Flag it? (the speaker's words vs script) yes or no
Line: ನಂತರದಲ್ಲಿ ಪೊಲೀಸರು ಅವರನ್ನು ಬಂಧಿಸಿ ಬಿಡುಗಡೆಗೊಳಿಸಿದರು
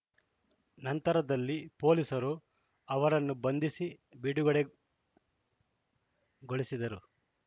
no